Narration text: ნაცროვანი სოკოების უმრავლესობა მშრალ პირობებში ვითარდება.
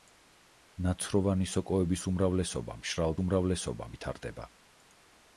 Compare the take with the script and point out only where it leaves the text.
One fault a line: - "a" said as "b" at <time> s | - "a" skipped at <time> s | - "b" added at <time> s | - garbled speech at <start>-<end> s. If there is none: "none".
- "პირობებში" said as "უმრავლესობა" at 3.2 s